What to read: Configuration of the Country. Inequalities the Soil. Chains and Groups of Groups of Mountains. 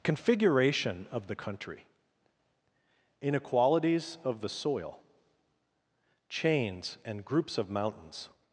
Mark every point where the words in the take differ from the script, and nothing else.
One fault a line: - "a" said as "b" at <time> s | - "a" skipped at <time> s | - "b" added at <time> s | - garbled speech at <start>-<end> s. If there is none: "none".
- "of" added at 4.2 s
- "Groups of" skipped at 7.7 s